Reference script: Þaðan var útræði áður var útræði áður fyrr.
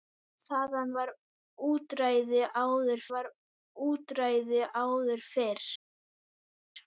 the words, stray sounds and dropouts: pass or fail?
pass